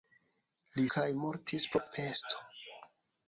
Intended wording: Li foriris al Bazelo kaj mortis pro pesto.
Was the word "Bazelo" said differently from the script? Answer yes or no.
yes